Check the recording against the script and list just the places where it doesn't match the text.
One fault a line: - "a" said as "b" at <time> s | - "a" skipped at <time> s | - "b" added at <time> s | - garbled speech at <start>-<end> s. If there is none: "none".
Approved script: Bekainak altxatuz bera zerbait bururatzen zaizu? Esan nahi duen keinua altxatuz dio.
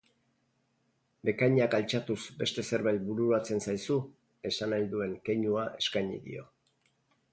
- "bera" said as "beste" at 2.4 s
- "altxatuz" said as "eskaini" at 5.8 s